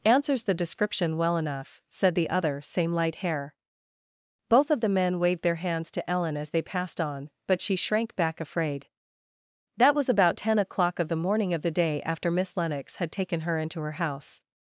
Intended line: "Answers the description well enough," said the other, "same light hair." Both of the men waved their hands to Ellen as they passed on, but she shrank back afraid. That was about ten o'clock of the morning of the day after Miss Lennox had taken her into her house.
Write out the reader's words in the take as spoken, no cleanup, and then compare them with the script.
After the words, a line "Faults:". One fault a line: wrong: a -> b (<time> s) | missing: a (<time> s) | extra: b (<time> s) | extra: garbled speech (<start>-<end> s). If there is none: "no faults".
"Answers the description well enough," said the other, "same light hair." Both of the men waved their hands to Ellen as they passed on, but she shrank back afraid. That was about ten o'clock of the morning of the day after Miss Lennox had taken her into her house.
Faults:
no faults